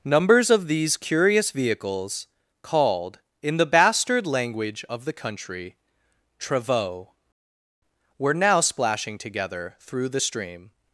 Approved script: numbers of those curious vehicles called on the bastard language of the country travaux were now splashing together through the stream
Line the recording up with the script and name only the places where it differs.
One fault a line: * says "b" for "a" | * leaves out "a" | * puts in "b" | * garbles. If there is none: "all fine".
* says "these" for "those"
* says "in" for "on"